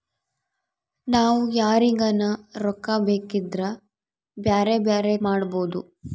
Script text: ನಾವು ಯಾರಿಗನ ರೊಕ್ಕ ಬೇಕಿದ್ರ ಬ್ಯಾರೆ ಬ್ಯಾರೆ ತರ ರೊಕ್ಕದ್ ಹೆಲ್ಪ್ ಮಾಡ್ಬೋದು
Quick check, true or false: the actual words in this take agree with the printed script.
false